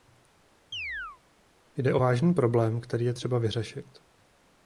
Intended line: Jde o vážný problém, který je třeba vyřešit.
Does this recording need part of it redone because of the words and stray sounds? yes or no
yes